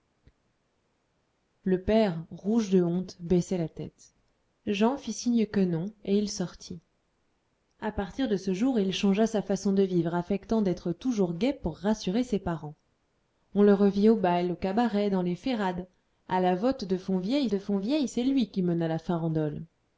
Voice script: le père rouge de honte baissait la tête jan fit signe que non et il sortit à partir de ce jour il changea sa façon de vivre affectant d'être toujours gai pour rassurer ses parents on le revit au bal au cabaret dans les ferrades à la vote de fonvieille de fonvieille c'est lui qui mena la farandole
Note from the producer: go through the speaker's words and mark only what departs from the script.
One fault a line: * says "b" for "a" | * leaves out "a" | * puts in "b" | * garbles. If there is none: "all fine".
all fine